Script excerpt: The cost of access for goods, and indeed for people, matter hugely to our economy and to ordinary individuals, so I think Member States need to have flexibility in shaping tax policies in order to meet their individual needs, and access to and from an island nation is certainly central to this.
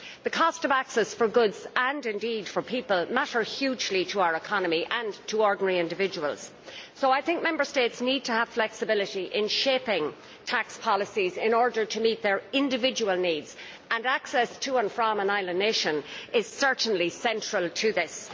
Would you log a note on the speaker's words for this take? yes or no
no